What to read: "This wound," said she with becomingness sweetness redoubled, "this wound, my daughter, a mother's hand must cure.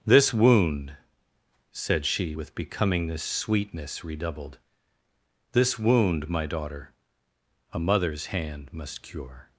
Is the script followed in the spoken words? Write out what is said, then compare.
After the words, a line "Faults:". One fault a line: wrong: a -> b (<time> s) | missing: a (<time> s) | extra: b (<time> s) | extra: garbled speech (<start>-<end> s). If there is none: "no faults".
"This wound," said she with becomingness sweetness redoubled, "this wound, my daughter, a mother's hand must cure.
Faults:
no faults